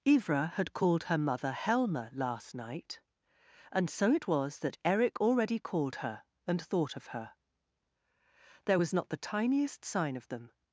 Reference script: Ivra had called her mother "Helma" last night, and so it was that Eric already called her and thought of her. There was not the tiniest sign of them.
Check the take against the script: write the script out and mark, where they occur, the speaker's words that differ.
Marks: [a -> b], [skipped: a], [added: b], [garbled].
Ivra had called her mother "Helma" last night, and so it was that Eric already called her and thought of her. There was not the tiniest sign of them.